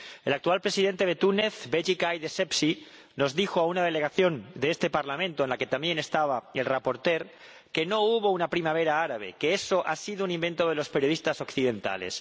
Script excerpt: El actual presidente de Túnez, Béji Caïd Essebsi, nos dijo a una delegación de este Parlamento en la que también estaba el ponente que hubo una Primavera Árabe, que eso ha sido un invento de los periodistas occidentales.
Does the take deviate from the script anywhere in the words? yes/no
yes